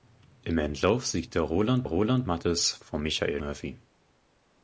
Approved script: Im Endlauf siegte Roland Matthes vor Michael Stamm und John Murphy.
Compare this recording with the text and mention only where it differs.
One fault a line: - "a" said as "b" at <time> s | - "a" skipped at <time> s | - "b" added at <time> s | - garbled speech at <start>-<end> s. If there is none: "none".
- "Roland" added at 1.8 s
- "Stamm und John" skipped at 3.4 s